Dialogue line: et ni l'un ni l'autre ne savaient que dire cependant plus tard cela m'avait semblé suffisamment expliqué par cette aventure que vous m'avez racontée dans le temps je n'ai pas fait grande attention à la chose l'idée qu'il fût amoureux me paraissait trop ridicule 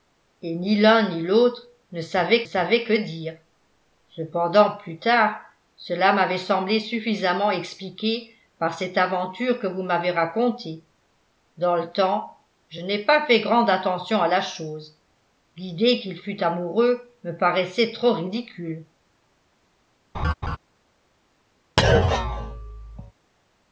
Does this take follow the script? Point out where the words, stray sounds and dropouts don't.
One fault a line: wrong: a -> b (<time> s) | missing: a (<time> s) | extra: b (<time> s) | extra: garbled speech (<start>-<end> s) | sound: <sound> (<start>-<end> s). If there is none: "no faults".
extra: savaient (2.4 s)
sound: laugh (20.1-20.6 s)
sound: thud (21.8-23.1 s)